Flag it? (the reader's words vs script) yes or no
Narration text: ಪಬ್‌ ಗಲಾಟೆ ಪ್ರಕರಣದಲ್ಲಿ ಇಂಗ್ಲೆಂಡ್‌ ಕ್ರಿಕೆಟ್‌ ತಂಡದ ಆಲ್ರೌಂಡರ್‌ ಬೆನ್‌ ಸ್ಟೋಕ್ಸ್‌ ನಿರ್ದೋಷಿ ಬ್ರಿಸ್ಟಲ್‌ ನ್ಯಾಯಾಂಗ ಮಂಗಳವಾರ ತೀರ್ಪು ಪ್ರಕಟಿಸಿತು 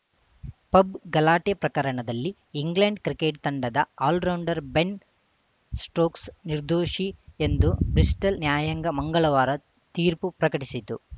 yes